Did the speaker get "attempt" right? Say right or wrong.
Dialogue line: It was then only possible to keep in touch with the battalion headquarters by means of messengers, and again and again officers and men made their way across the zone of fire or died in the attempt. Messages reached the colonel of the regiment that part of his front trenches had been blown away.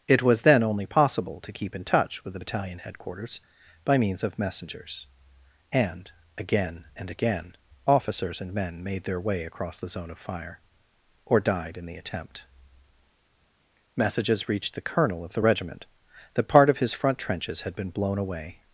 right